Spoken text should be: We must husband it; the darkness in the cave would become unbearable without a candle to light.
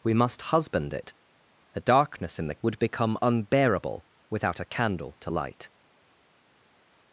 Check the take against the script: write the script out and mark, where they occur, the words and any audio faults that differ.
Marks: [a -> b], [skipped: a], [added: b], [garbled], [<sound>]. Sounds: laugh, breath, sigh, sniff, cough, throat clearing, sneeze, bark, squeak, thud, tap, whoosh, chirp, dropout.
We must husband it; the darkness in the [skipped: cave] would become unbearable without a candle to light.